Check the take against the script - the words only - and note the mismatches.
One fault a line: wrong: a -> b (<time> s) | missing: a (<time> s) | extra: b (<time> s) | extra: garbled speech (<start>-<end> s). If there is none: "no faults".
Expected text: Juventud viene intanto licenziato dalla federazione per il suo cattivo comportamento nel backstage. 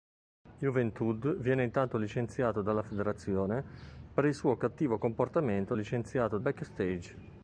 wrong: nel -> licenziato (5.8 s)